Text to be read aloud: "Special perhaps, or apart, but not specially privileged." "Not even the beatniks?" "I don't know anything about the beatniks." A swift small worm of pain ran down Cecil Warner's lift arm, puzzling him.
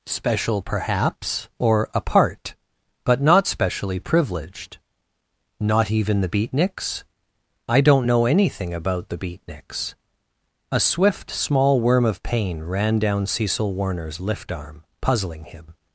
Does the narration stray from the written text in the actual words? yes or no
no